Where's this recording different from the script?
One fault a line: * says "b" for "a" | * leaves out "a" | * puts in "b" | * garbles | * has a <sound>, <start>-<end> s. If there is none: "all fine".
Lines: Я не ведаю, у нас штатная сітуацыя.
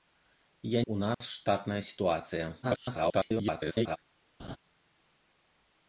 * leaves out "не ведаю"
* has a dropout, 1.1-1.2 s
* garbles
* has a laugh, 4.4-4.6 s